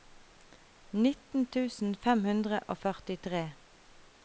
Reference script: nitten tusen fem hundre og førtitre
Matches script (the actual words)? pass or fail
pass